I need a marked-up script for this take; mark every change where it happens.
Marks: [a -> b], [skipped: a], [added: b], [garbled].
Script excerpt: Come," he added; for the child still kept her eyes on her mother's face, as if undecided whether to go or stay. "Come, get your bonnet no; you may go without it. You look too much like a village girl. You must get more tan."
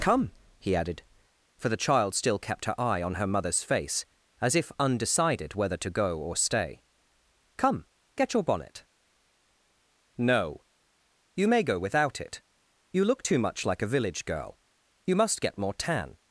Come," he added; for the child still kept her [eyes -> eye] on her mother's face, as if undecided whether to go or stay. "Come, get your bonnet no; you may go without it. You look too much like a village girl. You must get more tan."